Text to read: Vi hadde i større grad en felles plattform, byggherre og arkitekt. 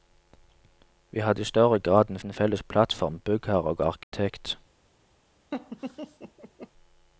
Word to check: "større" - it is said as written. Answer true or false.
true